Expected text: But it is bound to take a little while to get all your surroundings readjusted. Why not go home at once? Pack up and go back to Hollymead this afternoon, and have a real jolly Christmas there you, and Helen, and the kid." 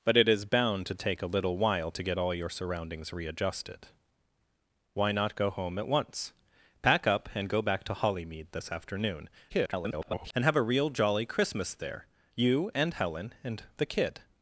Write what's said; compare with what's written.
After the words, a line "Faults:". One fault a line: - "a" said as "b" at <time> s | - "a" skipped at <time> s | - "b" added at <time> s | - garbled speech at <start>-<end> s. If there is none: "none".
But it is bound to take a little while to get all your surroundings readjusted. Why not go home at once? Pack up and go back to Hollymead this afternoon, [garbled] and have a real jolly Christmas there you, and Helen, and the kid."
Faults:
- garbled speech at 9.5-10.3 s